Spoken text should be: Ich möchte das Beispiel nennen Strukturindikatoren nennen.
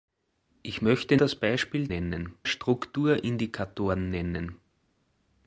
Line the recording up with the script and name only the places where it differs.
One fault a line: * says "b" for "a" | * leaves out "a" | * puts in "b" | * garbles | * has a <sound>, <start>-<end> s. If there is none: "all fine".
all fine